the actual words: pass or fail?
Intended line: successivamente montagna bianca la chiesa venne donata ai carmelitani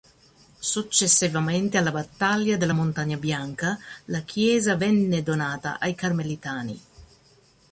fail